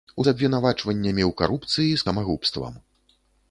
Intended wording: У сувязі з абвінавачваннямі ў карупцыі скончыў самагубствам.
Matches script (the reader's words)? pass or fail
fail